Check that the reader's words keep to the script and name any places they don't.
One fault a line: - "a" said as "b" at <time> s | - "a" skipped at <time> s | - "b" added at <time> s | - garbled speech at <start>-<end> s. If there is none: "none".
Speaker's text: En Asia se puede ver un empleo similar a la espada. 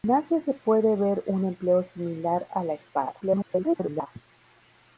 - garbled speech at 3.2-4.1 s